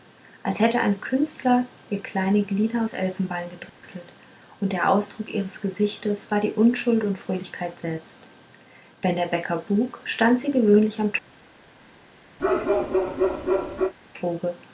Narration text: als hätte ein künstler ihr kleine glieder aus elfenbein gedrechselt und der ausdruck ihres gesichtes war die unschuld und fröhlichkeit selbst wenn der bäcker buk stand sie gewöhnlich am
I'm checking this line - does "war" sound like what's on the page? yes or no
yes